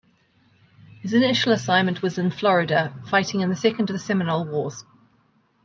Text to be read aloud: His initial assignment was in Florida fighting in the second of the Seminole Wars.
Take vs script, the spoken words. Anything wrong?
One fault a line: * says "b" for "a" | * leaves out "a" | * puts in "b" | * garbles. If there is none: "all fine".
all fine